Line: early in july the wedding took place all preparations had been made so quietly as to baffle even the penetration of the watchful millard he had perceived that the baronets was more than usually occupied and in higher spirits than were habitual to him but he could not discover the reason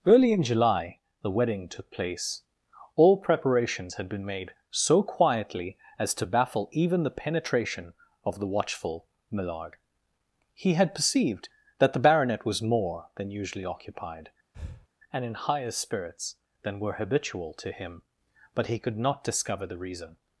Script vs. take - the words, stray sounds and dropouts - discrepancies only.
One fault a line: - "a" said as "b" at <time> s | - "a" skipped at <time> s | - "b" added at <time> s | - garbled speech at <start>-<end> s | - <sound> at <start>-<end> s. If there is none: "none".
- "baronets" said as "baronet" at 12.0 s
- breath at 14.5-14.9 s